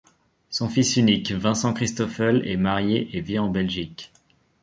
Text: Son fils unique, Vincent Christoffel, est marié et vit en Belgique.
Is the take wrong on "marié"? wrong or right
right